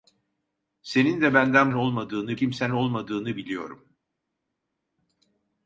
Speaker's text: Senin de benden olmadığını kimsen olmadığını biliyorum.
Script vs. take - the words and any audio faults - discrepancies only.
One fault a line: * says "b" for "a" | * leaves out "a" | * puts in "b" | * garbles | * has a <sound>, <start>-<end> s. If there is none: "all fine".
all fine